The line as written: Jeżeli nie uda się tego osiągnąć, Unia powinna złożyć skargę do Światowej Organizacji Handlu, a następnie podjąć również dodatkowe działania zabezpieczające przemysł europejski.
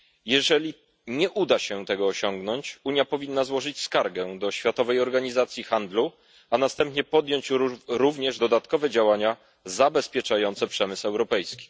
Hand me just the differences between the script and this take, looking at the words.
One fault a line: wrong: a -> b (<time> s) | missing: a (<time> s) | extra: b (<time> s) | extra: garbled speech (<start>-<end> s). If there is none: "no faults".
no faults